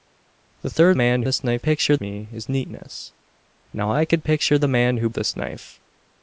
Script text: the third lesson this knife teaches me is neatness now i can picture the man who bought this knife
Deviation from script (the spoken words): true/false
true